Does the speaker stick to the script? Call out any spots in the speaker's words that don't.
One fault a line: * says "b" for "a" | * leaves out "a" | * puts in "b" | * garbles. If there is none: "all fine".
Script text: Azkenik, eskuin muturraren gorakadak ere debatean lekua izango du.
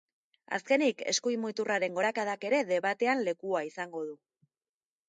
all fine